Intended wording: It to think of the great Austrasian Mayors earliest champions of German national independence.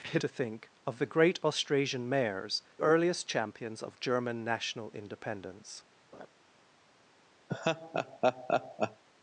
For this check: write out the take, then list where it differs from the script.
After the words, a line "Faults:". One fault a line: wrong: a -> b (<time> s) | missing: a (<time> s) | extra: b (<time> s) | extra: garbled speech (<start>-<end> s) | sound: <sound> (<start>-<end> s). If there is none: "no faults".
It to think of the great Austrasian Mayors earliest champions of German national independence.
Faults:
sound: laugh (6.1-6.3 s)
sound: laugh (7.5-9.0 s)